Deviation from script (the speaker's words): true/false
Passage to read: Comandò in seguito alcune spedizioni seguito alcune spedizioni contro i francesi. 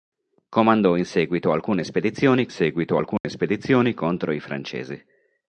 false